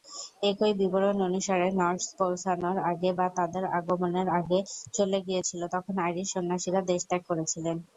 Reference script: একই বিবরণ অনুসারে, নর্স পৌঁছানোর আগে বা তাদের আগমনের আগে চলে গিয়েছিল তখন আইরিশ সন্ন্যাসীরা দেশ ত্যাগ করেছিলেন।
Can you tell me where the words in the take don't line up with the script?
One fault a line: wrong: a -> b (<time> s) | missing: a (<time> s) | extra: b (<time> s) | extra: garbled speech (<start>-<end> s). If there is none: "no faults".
no faults